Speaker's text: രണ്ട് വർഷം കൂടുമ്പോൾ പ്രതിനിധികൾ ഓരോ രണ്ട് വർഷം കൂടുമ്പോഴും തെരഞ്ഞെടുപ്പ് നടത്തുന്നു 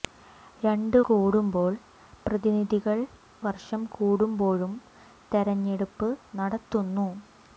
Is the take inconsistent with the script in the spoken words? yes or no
yes